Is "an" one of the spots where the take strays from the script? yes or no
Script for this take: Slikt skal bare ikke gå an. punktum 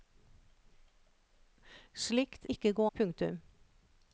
yes